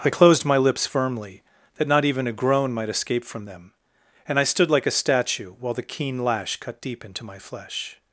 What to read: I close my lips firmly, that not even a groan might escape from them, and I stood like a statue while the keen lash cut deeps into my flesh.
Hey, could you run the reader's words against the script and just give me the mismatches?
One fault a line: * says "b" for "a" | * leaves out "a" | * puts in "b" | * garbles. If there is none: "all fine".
* says "closed" for "close"
* says "deep" for "deeps"